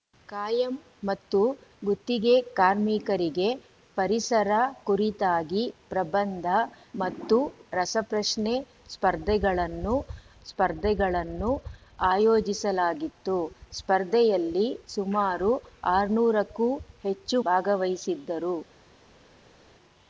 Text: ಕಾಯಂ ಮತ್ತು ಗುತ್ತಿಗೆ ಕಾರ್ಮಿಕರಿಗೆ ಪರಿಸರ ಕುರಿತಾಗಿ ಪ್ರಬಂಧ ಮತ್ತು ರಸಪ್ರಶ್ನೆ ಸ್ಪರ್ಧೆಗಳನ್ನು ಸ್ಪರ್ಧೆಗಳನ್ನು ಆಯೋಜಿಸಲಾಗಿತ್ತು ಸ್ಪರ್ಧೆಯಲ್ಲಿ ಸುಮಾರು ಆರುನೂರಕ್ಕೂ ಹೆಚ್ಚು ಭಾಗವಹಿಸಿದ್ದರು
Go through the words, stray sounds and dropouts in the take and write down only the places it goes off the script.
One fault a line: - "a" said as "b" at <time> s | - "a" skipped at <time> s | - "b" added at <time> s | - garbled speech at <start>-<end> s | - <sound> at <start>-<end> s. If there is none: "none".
none